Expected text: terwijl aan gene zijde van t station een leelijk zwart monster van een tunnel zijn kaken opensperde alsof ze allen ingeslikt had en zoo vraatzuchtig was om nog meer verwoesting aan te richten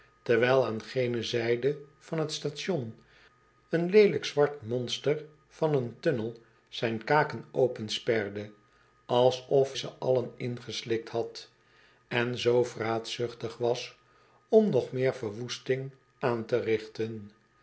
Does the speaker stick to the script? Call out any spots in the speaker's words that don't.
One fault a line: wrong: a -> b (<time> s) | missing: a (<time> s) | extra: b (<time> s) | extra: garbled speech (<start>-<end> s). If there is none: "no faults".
no faults